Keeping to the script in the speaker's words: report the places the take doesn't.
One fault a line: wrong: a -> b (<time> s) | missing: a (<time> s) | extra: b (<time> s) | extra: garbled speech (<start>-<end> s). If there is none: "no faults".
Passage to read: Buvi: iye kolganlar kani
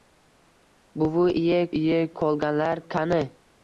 extra: iye (1.8 s)